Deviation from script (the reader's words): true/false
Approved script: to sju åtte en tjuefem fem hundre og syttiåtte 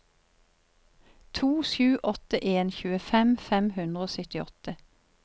false